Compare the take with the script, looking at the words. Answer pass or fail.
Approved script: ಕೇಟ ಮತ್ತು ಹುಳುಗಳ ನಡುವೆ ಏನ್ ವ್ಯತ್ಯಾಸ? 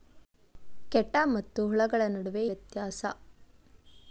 fail